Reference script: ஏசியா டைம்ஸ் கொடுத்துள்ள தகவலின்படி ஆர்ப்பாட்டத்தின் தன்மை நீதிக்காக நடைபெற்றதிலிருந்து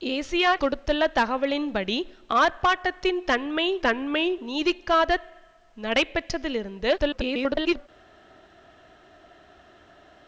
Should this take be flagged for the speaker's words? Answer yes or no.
yes